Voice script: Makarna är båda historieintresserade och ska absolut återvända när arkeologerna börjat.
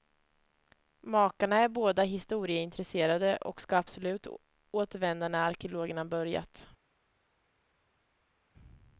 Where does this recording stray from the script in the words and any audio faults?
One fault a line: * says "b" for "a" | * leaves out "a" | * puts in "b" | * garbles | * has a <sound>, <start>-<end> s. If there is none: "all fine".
all fine